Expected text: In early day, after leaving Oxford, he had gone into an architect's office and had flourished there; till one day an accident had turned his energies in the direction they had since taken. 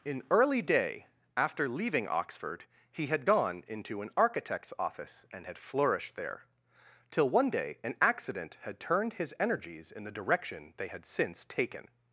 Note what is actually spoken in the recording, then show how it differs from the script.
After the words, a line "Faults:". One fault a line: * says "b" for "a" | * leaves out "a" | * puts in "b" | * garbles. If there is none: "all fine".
In early day, after leaving Oxford, he had gone into an architect's office and had flourished there; till one day an accident had turned his energies in the direction they had since taken.
Faults:
all fine